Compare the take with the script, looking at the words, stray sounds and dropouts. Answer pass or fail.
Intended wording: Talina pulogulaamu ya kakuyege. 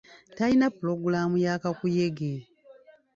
pass